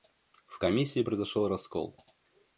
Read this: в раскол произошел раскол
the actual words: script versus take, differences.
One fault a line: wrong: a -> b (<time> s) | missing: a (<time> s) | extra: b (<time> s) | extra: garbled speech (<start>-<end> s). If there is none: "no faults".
wrong: раскол -> комиссии (0.6 s)